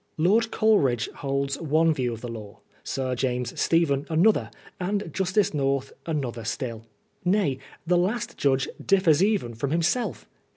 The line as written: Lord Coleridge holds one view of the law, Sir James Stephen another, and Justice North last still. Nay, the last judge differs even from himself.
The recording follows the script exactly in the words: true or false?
false